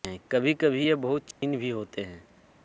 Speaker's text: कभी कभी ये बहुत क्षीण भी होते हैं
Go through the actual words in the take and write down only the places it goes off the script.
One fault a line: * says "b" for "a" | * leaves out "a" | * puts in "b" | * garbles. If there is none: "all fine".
all fine